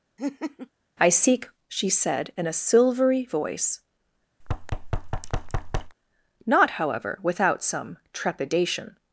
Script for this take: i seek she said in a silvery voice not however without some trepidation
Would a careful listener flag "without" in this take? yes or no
no